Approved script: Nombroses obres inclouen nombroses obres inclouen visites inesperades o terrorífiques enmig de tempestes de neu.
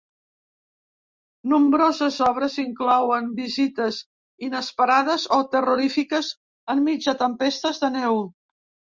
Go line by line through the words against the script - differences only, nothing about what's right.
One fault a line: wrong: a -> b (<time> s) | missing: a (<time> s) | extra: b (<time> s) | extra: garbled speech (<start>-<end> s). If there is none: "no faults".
missing: nombroses obres inclouen (3.3 s)